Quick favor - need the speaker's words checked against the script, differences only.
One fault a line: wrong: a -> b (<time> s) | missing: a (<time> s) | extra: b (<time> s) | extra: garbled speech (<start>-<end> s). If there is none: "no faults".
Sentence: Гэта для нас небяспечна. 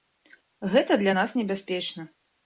no faults